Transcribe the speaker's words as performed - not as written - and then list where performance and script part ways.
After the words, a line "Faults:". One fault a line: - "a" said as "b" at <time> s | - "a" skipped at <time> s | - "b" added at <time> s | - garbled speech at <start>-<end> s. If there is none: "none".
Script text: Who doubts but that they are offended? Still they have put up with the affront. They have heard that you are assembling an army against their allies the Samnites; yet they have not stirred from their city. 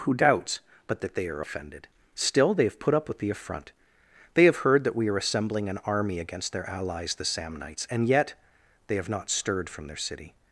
Who doubts but that they are offended? Still they have put up with the affront. They have heard that we are assembling an army against their allies the Samnites; and yet they have not stirred from their city.
Faults:
- "you" said as "we" at 5.0 s
- "and" added at 7.9 s